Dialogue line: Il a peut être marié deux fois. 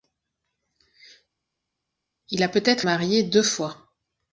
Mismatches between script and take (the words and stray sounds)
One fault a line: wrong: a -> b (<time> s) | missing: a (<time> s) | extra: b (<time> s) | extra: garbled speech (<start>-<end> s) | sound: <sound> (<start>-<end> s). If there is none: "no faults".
no faults